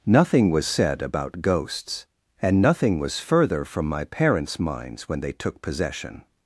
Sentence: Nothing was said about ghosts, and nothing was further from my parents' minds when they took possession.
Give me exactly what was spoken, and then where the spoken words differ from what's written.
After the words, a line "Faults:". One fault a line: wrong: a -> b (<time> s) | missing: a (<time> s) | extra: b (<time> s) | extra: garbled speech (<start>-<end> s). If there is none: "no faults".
Nothing was said about ghosts, and nothing was further from my parents' minds when they took possession.
Faults:
no faults